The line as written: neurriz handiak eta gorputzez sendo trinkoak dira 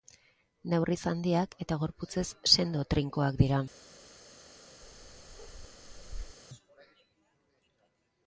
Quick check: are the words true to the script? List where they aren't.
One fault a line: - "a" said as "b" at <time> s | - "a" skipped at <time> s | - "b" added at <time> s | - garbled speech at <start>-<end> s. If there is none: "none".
none